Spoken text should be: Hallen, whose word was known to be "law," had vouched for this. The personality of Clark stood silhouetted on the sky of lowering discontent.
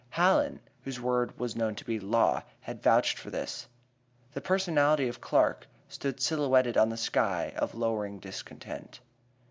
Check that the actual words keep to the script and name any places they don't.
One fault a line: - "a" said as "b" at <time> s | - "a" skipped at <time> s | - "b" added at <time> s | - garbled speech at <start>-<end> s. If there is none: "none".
none